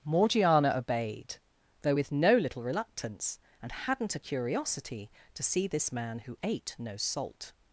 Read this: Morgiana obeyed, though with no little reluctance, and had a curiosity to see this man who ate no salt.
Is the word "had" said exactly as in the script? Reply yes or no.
no